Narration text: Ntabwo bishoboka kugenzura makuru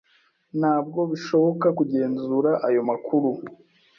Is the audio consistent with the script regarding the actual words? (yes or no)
no